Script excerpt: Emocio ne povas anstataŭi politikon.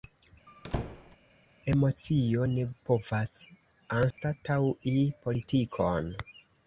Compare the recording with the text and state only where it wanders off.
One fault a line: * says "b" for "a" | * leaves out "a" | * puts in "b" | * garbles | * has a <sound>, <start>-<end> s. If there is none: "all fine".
* has a squeak, 0.5-1.2 s
* has a dropout, 4.1-4.2 s